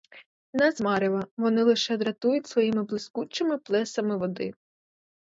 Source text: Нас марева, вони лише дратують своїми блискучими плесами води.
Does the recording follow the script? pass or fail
pass